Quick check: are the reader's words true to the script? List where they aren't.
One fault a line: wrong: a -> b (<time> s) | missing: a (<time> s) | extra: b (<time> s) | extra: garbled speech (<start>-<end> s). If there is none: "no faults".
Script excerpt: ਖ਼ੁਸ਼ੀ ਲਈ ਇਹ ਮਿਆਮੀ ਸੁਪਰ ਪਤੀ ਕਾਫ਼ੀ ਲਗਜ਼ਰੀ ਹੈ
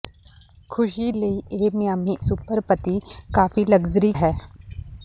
no faults